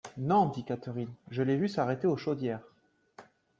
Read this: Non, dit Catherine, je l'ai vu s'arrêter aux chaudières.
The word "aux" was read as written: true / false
true